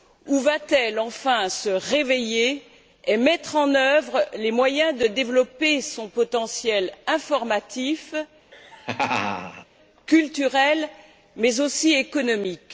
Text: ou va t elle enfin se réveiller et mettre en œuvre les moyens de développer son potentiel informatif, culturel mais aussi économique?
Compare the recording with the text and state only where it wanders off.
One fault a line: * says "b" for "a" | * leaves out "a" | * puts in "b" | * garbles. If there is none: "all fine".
all fine